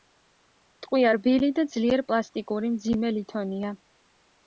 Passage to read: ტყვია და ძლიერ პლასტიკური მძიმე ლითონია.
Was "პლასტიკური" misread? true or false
false